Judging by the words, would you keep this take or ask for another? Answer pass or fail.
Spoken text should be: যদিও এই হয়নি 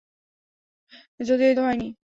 pass